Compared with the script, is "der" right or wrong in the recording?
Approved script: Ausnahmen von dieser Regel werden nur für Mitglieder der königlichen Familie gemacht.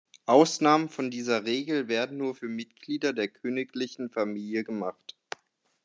right